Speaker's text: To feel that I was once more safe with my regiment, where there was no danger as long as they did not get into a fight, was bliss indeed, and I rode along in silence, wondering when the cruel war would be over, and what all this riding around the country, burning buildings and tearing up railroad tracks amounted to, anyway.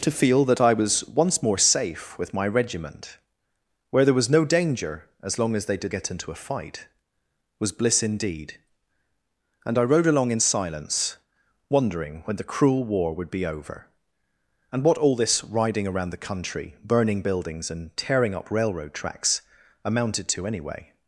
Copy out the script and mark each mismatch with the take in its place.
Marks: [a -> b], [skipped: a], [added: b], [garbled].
To feel that I was once more safe with my regiment, where there was no danger as long as they did [skipped: not] get into a fight, was bliss indeed, and I rode along in silence, wondering when the cruel war would be over, and what all this riding around the country, burning buildings and tearing up railroad tracks amounted to, anyway.